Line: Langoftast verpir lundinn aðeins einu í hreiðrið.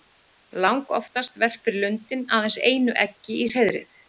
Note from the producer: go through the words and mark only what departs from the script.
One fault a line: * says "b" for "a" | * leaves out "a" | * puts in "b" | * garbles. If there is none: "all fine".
* puts in "eggi"